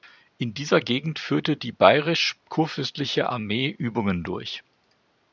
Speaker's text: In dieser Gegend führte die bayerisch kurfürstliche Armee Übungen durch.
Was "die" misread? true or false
false